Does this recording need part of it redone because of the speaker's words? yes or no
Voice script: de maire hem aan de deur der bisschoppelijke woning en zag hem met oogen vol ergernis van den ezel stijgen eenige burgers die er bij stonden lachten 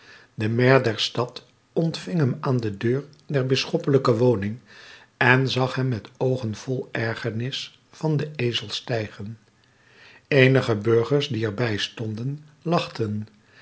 yes